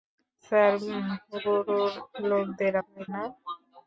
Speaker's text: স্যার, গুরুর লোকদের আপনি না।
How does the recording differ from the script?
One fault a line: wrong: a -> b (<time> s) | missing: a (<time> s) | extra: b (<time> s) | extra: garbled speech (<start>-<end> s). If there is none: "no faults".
no faults